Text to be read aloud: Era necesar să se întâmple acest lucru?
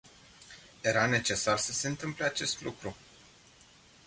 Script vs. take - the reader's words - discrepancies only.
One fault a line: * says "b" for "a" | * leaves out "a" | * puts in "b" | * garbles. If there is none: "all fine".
all fine